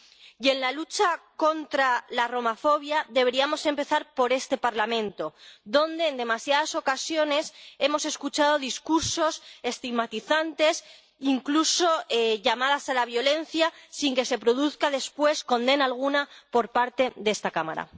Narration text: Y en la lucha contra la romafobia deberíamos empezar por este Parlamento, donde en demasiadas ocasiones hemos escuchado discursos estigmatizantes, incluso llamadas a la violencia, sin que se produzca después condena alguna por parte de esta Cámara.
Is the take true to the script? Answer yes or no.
yes